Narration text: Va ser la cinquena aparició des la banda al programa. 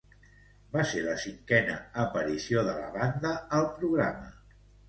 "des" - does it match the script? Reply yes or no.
no